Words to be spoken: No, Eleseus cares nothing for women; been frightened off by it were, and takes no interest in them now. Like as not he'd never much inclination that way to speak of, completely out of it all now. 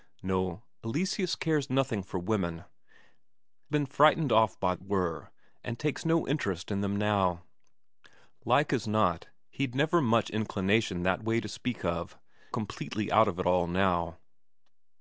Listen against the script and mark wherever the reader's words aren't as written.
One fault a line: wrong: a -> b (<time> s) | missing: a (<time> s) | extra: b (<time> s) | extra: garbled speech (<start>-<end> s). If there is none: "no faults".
no faults